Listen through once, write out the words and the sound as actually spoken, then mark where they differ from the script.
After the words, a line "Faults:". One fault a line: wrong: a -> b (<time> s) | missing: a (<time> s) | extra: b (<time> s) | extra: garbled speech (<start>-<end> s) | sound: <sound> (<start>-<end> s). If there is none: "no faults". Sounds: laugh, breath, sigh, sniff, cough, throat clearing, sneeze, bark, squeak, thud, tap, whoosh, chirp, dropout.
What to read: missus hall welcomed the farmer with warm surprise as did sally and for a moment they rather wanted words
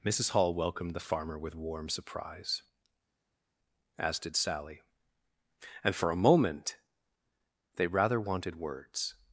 missus hall welcomed the farmer with warm surprise as did sally and for a moment they rather wanted words
Faults:
no faults